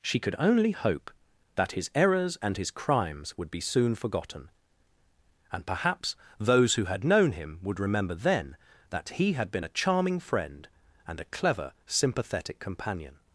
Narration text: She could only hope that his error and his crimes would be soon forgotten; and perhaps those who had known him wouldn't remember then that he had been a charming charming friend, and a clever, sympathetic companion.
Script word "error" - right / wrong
wrong